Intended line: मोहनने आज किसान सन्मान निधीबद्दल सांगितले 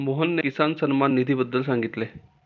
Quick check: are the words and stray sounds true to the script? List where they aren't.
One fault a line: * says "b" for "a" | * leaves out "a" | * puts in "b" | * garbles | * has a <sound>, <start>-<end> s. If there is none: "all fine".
* leaves out "आज"